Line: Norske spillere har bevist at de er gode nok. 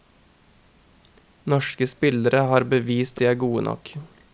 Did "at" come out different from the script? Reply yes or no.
yes